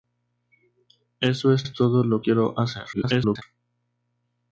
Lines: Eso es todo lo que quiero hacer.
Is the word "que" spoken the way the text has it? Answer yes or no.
no